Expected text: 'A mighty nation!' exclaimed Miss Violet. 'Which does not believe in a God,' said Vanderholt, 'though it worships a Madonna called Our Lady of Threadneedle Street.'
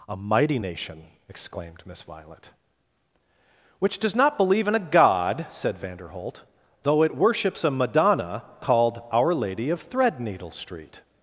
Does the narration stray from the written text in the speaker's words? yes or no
no